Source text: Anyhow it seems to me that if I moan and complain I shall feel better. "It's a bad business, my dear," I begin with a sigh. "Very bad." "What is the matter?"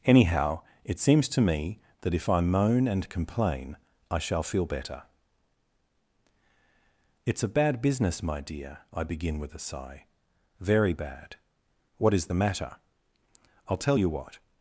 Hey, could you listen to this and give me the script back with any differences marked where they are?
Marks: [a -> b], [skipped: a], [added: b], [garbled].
Anyhow it seems to me that if I moan and complain I shall feel better. "It's a bad business, my dear," I begin with a sigh. "Very bad." "What is the matter?" [added: I'll tell you what]